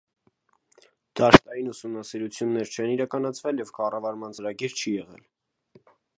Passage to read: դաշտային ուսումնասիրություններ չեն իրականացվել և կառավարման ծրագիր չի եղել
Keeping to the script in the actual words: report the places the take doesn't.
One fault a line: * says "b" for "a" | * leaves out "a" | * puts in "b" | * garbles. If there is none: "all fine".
all fine